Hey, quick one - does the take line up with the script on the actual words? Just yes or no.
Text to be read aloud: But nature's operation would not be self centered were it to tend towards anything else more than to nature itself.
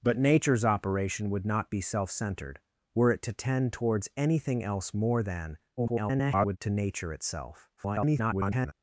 no